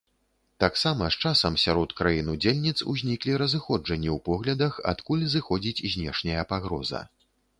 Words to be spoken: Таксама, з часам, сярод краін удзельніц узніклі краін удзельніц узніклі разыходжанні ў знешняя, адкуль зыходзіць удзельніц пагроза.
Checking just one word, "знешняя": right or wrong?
wrong